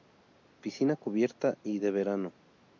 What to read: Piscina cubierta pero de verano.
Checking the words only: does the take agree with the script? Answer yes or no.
no